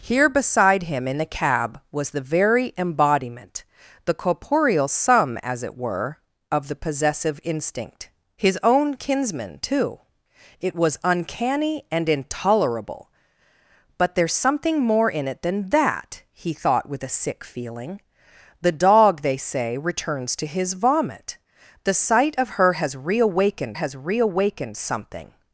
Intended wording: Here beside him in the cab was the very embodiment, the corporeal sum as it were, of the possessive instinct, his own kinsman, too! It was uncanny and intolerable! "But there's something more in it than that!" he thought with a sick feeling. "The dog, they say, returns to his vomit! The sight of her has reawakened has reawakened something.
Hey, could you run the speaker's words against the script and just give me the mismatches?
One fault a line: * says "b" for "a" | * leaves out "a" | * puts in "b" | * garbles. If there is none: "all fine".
all fine